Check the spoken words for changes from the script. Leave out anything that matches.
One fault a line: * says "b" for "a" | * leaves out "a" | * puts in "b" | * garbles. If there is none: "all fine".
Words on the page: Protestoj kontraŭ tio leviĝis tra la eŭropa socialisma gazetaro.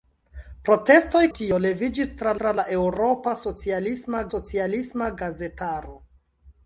* leaves out "kontraŭ"
* puts in "tra"
* puts in "socialisma"